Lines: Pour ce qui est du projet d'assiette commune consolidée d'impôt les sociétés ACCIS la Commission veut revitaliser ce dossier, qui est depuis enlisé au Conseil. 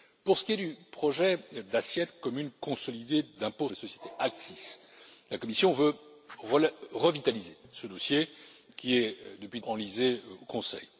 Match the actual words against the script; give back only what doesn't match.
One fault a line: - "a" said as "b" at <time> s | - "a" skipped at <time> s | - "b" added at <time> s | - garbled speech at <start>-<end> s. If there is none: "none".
none